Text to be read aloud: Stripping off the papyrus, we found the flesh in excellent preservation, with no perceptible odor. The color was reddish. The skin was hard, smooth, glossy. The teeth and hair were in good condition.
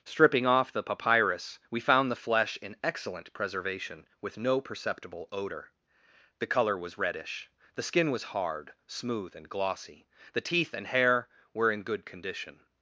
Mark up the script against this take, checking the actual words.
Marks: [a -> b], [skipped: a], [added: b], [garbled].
Stripping off the papyrus, we found the flesh in excellent preservation, with no perceptible odor. The color was reddish. The skin was hard, smooth, [added: and] glossy. The teeth and hair were in good condition.